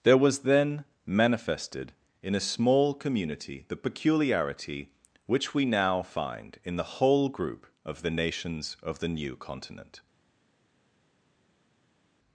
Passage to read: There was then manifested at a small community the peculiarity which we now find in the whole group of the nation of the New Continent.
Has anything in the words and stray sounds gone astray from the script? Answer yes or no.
yes